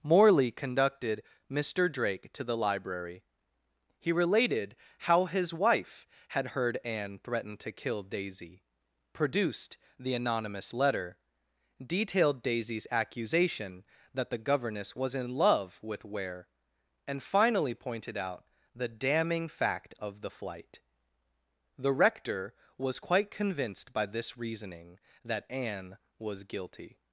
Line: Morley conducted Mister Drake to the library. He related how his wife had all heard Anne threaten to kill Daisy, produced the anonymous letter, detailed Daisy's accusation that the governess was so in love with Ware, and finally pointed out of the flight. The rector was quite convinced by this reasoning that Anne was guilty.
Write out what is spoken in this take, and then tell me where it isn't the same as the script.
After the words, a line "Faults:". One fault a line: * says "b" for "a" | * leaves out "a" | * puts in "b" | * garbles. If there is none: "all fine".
Morley conducted Mister Drake to the library. He related how his wife had heard Anne threaten to kill Daisy, produced the anonymous letter, detailed Daisy's accusation that the governess was in love with Ware, and finally pointed out the damning fact of the flight. The rector was quite convinced by this reasoning that Anne was guilty.
Faults:
* leaves out "all"
* leaves out "so"
* puts in "the damning fact"